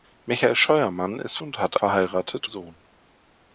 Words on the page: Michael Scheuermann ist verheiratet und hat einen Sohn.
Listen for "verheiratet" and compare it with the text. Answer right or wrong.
wrong